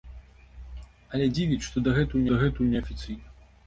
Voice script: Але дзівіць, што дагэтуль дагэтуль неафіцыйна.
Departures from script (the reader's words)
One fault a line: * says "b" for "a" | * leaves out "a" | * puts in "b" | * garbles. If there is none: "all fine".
all fine